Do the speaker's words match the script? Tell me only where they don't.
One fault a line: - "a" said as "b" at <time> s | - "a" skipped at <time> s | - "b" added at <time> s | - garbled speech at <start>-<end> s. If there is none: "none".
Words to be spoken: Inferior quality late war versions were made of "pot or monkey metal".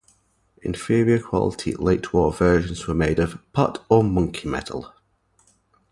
none